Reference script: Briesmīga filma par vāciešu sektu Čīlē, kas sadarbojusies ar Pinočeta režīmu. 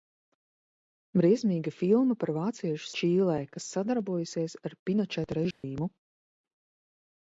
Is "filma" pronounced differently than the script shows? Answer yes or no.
no